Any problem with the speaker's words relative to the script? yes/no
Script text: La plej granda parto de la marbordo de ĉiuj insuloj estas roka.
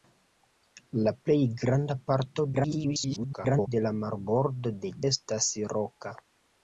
yes